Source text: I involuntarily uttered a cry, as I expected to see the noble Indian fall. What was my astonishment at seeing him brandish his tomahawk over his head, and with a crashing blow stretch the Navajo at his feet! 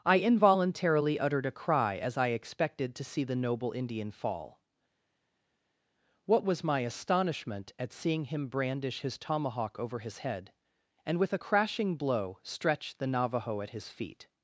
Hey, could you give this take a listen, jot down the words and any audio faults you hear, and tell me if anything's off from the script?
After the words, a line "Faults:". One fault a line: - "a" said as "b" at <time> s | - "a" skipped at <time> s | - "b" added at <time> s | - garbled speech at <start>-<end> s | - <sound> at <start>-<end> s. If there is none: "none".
I involuntarily uttered a cry, as I expected to see the noble Indian fall. What was my astonishment at seeing him brandish his tomahawk over his head, and with a crashing blow stretch the Navajo at his feet!
Faults:
none